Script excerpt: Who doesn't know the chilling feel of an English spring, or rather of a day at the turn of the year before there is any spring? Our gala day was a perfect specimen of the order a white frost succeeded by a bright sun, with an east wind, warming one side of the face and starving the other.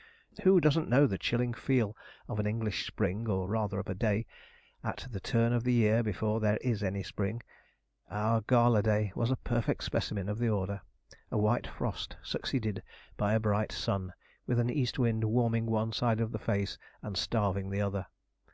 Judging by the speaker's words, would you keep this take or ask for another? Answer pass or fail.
pass